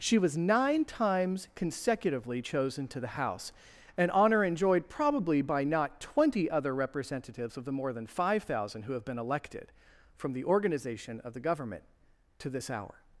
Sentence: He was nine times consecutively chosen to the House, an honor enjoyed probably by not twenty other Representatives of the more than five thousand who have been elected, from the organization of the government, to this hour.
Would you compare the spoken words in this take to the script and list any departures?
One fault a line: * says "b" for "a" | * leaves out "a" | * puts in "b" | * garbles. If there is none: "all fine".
* says "She" for "He"